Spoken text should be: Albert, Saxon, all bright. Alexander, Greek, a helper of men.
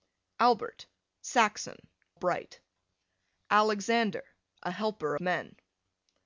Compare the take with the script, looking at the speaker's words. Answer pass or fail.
fail